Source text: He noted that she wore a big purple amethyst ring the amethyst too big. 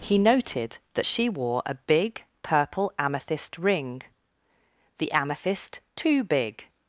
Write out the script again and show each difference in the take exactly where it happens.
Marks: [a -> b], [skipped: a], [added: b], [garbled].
He noted that she wore a big purple amethyst ring the amethyst too big.